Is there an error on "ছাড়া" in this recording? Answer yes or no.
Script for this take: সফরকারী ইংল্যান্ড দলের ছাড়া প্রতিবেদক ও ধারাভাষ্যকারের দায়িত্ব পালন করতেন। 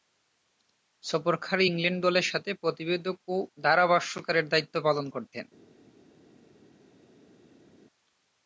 yes